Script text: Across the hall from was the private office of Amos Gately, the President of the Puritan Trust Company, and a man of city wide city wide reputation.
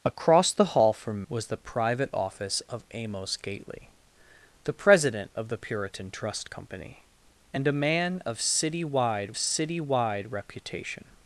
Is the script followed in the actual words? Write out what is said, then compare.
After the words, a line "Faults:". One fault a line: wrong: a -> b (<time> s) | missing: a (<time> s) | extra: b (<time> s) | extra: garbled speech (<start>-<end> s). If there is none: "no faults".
Across the hall from was the private office of Amos Gately, the President of the Puritan Trust Company, and a man of city wide city wide reputation.
Faults:
no faults